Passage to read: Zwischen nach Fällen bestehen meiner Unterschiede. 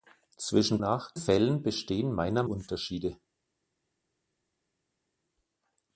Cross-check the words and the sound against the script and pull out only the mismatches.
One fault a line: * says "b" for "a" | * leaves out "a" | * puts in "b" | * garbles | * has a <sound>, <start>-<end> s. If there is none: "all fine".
all fine